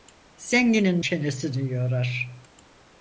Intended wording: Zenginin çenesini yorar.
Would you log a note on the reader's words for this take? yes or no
no